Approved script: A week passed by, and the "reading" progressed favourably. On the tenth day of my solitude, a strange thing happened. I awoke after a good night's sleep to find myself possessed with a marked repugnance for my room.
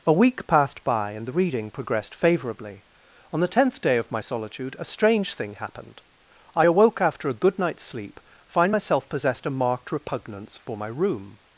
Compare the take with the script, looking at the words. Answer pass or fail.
fail